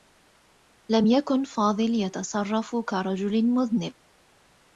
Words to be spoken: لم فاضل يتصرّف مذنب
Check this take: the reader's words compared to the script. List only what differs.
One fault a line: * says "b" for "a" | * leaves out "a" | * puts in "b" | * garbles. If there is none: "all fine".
* puts in "يكن"
* puts in "كرجل"